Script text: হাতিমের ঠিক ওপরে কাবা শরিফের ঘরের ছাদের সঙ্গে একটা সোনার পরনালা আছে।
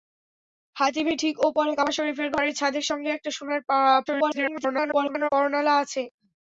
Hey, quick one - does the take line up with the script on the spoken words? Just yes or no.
no